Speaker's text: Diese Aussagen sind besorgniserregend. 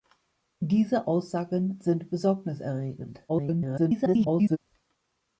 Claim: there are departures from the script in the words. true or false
true